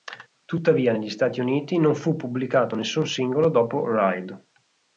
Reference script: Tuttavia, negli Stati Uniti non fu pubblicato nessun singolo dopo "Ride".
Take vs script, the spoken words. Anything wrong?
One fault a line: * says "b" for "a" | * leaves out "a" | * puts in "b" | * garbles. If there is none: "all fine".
all fine